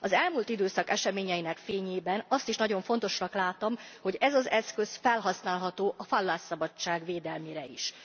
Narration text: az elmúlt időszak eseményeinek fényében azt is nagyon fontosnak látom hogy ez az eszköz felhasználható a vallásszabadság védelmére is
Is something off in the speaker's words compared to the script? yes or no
no